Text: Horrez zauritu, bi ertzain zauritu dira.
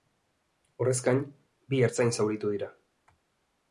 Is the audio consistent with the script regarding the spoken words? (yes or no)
no